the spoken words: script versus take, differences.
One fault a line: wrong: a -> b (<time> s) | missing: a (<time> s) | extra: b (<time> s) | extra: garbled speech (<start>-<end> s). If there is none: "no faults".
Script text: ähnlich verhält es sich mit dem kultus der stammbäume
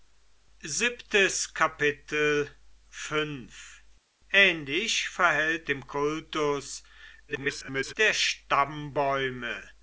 missing: es sich mit (5.7 s)
extra: garbled speech (7.3-7.9 s)